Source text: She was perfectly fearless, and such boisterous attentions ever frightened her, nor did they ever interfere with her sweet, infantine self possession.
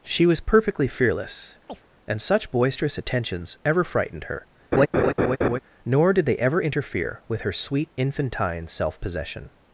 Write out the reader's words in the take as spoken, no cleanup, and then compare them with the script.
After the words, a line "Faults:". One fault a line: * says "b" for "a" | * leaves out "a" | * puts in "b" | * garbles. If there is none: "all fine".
She was perfectly fearless, and such boisterous attentions ever frightened her, nor did they ever interfere with her sweet, infantine self possession.
Faults:
all fine